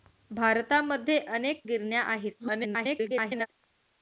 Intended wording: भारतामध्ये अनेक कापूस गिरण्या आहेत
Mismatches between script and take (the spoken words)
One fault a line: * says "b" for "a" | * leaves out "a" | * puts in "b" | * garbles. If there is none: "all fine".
* leaves out "कापूस"
* garbles